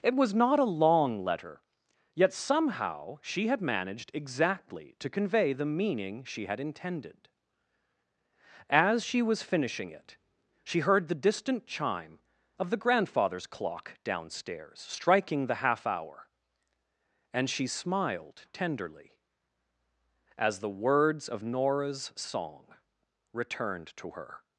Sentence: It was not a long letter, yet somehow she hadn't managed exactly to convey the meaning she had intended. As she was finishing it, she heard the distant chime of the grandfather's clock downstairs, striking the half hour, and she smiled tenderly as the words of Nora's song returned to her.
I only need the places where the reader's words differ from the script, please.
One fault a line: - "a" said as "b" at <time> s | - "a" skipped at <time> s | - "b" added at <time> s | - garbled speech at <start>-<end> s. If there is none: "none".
- "hadn't" said as "had" at 3.5 s